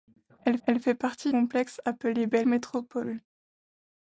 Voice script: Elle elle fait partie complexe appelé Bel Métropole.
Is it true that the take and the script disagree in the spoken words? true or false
false